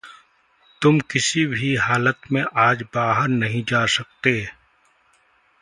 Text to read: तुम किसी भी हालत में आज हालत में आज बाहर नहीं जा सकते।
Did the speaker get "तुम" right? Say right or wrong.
right